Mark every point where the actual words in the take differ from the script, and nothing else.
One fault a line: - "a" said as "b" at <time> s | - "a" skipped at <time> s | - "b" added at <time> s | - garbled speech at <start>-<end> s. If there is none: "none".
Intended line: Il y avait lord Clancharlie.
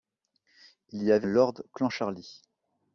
none